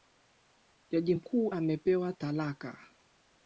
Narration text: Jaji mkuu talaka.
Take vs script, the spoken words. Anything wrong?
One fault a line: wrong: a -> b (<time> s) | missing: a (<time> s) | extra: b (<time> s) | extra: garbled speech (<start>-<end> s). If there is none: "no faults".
extra: amepewa (1.5 s)